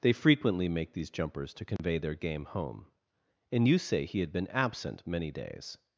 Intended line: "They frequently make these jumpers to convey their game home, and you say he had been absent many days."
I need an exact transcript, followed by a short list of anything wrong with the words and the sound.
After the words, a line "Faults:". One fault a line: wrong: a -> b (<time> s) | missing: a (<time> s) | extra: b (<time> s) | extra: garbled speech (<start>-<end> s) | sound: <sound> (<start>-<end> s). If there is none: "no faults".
"They frequently make these jumpers to convey their game home, and you say he had been absent many days."
Faults:
sound: dropout (1.8-1.8 s)